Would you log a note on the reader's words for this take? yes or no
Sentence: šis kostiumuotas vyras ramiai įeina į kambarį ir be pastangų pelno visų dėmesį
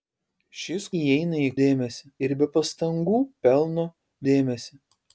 yes